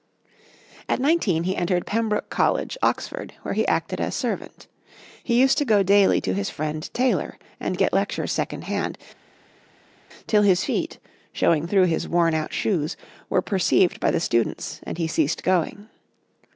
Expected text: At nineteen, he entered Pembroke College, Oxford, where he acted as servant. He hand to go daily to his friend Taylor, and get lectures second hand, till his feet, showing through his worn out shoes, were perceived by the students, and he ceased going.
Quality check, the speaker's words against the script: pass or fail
fail